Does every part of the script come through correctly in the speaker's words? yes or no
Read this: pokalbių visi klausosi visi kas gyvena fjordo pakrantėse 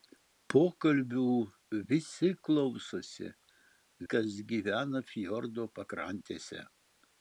no